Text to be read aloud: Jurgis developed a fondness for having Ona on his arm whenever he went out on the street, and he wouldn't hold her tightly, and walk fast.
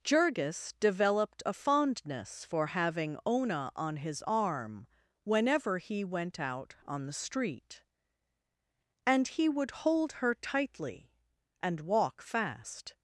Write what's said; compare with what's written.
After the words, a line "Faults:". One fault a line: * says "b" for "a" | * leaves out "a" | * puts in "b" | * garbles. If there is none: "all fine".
Jurgis developed a fondness for having Ona on his arm whenever he went out on the street, and he would hold her tightly, and walk fast.
Faults:
* says "would" for "wouldn't"